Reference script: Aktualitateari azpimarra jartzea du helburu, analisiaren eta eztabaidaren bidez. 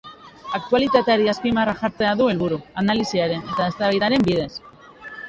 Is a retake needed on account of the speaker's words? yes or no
no